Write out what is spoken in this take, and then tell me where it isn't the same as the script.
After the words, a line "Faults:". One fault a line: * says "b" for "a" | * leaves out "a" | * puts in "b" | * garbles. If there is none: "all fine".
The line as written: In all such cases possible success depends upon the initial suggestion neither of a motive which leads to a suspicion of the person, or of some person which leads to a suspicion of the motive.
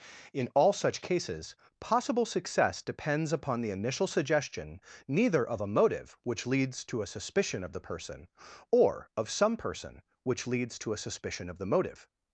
In all such cases possible success depends upon the initial suggestion neither of a motive which leads to a suspicion of the person, or of some person which leads to a suspicion of the motive.
Faults:
all fine